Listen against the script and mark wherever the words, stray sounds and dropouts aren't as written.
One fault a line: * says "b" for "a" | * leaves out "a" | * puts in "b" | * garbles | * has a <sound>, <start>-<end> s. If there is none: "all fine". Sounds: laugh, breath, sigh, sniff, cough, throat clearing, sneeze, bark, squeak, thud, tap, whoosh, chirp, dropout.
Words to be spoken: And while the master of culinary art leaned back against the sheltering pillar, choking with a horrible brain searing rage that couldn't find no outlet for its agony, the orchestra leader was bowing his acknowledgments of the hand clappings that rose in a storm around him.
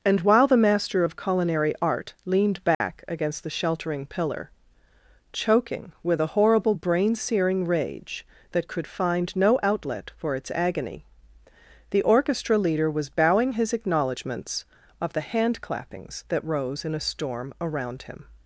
* has a dropout, 2.7-2.8 s
* says "could" for "couldn't"